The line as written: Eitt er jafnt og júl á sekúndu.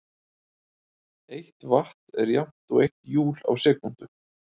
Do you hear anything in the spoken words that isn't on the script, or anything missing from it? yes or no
yes